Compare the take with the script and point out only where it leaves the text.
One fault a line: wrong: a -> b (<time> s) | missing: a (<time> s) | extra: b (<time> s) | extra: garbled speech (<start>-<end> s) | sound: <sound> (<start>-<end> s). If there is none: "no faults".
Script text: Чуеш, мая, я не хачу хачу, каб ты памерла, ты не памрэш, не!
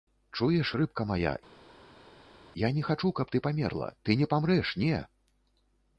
extra: рыбка (0.8 s)
missing: хачу (3.1 s)